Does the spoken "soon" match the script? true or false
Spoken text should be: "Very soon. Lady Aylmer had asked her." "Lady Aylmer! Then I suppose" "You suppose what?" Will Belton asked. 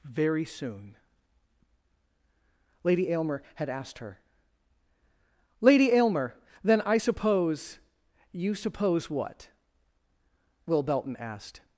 true